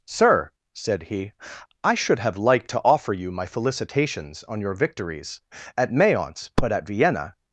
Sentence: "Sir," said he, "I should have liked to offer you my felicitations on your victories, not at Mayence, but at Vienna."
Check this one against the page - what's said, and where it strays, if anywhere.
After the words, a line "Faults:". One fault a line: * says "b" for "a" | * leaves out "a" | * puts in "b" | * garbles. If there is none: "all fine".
"Sir," said he, "I should have liked to offer you my felicitations on your victories, at Mayence, but at Vienna."
Faults:
* leaves out "not"